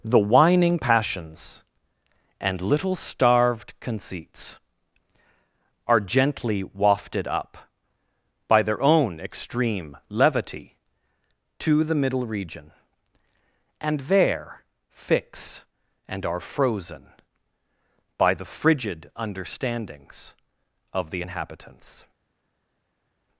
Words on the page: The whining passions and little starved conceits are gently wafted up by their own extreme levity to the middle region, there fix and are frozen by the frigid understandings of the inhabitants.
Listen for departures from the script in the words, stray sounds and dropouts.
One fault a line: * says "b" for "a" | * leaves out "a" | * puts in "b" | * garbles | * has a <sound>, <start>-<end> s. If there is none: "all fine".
* puts in "and"